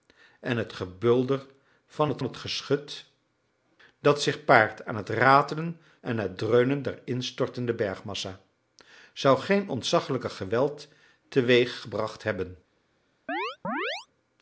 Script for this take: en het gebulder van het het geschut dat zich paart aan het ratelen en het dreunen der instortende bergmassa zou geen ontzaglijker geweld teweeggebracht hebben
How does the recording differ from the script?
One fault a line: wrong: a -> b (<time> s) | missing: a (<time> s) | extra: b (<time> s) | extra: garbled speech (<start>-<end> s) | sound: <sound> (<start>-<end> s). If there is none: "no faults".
sound: chirp (13.3-14.1 s)